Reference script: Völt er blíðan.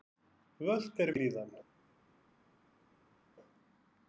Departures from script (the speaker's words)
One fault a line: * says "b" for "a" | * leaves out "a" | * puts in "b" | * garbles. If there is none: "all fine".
all fine